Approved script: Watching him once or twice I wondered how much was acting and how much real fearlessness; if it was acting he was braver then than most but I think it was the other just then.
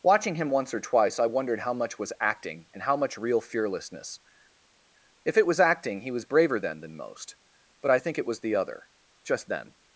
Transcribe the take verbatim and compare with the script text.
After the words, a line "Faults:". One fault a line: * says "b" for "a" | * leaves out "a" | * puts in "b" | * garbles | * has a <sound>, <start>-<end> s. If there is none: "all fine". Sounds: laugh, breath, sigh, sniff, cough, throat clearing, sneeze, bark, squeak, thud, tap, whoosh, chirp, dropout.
Watching him once or twice I wondered how much was acting and how much real fearlessness; if it was acting he was braver then than most but I think it was the other just then.
Faults:
all fine